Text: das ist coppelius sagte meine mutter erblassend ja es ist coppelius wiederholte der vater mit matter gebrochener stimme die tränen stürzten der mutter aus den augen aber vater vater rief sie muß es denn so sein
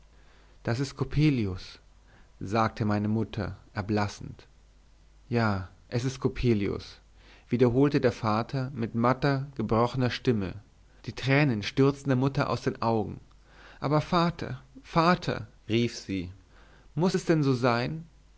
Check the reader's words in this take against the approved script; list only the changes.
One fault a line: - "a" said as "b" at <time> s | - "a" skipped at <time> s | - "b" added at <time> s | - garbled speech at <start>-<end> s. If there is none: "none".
none